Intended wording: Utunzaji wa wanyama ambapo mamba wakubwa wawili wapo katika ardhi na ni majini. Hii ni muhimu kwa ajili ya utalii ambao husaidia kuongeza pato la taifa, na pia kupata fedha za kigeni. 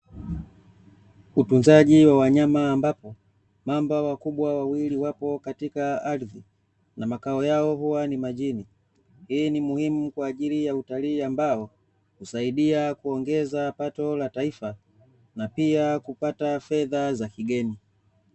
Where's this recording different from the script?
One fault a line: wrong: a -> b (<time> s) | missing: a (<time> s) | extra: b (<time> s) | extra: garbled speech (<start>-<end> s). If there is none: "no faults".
extra: makao yao huwa (7.1 s)